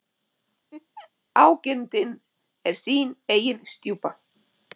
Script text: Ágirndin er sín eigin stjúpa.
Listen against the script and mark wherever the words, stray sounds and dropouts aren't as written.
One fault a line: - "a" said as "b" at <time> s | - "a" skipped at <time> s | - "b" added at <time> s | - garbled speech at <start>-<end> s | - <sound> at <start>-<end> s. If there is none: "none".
- laugh at 0.7-1.1 s